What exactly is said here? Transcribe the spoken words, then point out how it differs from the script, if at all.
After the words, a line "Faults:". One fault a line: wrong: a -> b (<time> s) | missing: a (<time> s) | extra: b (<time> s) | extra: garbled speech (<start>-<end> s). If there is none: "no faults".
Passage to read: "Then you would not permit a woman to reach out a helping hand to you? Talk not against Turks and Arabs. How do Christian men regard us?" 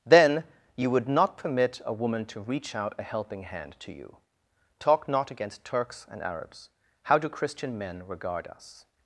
"Then you would not permit a woman to reach out a helping hand to you? Talk not against Turks and Arabs. How do Christian men regard us?"
Faults:
no faults